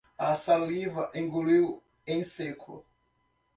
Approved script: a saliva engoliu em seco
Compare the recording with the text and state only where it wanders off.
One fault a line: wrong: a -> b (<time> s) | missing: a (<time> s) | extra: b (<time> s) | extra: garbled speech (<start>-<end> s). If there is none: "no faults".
no faults